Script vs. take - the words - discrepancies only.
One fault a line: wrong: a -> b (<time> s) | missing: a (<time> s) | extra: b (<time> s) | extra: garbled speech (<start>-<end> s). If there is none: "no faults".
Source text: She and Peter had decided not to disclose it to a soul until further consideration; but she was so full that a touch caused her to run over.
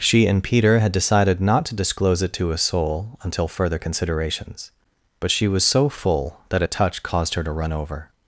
wrong: consideration -> considerations (3.8 s)